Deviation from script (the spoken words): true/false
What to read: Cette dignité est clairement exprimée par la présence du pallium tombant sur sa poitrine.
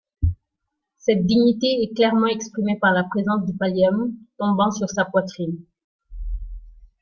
false